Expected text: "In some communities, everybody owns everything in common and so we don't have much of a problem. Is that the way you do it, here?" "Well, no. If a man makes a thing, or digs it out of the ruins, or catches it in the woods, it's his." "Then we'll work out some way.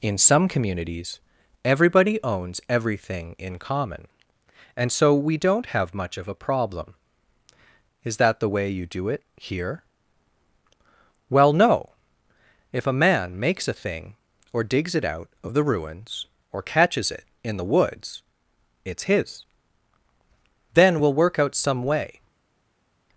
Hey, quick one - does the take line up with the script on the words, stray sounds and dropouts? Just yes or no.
yes